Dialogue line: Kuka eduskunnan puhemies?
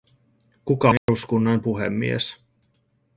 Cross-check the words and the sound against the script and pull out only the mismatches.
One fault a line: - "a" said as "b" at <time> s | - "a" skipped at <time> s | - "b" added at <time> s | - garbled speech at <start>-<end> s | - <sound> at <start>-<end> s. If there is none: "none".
- dropout at 1.0-1.1 s